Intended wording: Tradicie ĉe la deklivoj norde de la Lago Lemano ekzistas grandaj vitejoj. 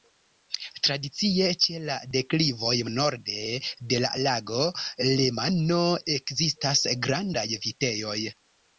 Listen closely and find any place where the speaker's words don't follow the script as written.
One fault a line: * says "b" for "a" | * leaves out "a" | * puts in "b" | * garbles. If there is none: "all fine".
all fine